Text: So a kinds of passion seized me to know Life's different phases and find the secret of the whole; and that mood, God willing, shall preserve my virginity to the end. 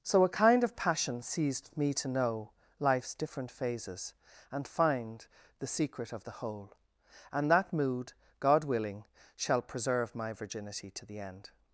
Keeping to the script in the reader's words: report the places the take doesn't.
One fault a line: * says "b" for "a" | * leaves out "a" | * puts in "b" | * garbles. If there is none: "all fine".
* says "kind" for "kinds"